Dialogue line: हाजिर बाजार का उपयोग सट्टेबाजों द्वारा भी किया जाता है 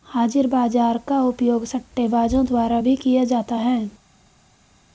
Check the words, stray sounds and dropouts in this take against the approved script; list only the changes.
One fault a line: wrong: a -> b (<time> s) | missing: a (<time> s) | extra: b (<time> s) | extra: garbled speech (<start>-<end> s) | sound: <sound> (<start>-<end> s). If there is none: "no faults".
no faults